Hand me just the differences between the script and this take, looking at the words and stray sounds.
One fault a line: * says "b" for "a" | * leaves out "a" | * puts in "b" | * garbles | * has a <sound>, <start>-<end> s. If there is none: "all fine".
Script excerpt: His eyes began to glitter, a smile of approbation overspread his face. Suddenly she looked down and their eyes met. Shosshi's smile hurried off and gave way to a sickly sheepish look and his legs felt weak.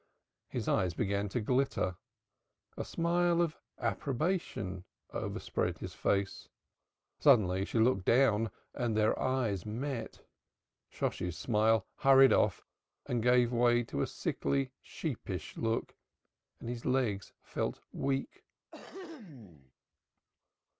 * has a throat clearing, 18.7-19.7 s